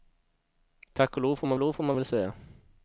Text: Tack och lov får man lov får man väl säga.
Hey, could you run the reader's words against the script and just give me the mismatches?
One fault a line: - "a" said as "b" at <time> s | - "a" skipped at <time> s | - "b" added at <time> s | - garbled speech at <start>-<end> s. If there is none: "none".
none